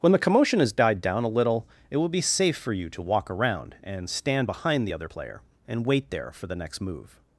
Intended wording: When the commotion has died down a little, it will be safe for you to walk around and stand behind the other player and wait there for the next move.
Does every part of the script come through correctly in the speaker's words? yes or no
yes